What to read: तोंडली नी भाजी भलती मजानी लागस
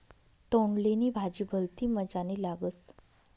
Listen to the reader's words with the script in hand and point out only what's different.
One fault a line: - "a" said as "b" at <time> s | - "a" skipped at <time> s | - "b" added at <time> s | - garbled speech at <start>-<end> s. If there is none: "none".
none